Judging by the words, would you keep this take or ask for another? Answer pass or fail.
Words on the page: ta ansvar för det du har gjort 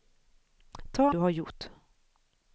fail